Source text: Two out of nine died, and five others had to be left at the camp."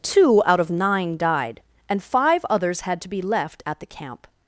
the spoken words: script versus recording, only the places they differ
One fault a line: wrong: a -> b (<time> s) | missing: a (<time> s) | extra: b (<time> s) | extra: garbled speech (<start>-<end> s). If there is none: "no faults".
no faults